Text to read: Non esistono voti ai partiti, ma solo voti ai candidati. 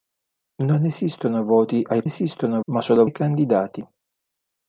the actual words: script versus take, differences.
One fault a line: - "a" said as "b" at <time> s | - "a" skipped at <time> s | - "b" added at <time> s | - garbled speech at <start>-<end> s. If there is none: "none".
- "partiti" said as "esistono" at 2.0 s
- "voti" skipped at 3.0 s